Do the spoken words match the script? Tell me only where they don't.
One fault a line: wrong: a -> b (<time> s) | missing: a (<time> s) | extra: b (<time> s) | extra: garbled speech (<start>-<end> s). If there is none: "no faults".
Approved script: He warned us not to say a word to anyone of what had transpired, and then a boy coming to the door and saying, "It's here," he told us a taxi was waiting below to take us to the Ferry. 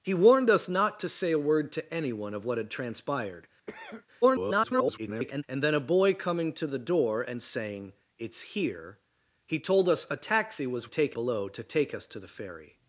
extra: garbled speech (4.2-5.4 s)
wrong: waiting -> take (10.8 s)